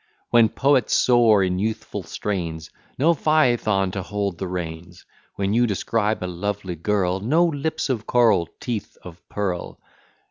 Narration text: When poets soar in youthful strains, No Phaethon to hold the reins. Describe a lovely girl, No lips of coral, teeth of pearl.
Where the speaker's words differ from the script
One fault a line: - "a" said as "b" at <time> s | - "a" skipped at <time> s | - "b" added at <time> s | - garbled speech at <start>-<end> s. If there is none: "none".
- "When you" added at 5.3 s